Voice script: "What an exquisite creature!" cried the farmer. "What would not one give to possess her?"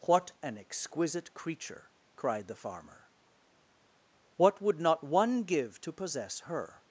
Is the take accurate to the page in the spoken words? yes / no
yes